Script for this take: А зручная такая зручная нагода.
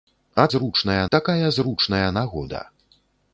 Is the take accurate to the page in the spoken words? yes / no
yes